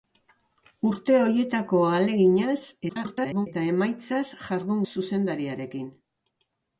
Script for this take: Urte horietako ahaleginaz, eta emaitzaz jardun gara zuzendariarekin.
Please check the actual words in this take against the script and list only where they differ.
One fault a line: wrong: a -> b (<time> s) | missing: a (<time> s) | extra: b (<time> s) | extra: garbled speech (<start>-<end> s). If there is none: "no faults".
extra: garbled speech (2.9-3.5 s)
missing: gara (4.8 s)